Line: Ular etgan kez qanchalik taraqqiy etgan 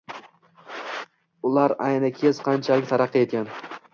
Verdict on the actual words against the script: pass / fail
fail